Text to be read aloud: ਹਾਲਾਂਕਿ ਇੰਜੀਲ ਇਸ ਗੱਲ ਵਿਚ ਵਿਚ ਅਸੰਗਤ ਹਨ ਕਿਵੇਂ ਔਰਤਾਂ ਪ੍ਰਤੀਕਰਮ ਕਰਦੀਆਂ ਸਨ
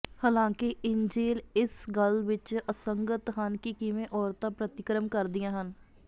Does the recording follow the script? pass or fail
fail